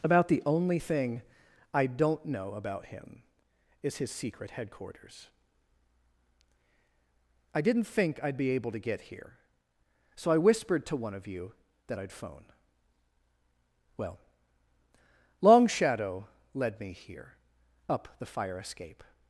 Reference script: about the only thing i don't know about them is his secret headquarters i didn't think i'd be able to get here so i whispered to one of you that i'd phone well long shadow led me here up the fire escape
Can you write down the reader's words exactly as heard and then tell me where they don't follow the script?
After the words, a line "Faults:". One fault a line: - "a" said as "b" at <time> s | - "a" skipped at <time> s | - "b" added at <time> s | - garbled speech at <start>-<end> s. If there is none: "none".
about the only thing i don't know about him is his secret headquarters i didn't think i'd be able to get here so i whispered to one of you that i'd phone well long shadow led me here up the fire escape
Faults:
- "them" said as "him" at 2.9 s